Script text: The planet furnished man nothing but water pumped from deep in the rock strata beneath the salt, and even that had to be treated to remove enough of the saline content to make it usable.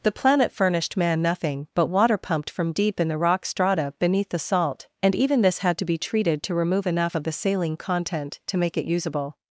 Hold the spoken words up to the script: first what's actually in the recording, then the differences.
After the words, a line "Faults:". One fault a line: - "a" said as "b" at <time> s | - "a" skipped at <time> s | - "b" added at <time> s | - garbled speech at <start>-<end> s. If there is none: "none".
The planet furnished man nothing but water pumped from deep in the rock strata beneath the salt, and even this had to be treated to remove enough of the saline content to make it usable.
Faults:
- "that" said as "this" at 5.4 s